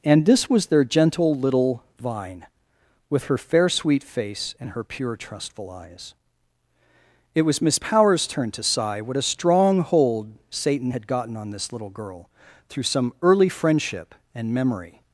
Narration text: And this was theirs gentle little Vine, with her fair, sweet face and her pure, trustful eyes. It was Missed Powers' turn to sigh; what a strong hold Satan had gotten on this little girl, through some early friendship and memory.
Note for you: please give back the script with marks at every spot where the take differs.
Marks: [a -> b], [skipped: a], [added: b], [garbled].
And this was [theirs -> their] gentle little Vine, with her fair, sweet face and her pure, trustful eyes. It was [Missed -> Miss] Powers' turn to sigh; what a strong hold Satan had gotten on this little girl, through some early friendship and memory.